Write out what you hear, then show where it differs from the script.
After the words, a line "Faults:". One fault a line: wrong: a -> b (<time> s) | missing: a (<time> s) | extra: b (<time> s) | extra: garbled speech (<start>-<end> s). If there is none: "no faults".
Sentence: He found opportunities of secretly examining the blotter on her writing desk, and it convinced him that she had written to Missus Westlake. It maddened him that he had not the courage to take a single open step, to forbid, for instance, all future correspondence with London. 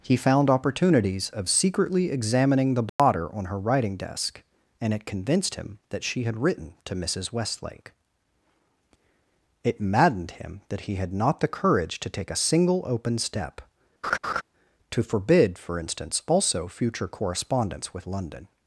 He found opportunities of secretly examining the blotter on her writing desk, and it convinced him that she had written to Missus Westlake. It maddened him that he had not the courage to take a single open step, to forbid, for instance, also future correspondence with London.
Faults:
wrong: all -> also (16.3 s)